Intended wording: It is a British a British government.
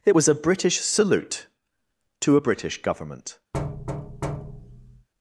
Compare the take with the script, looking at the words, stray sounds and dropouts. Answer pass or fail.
fail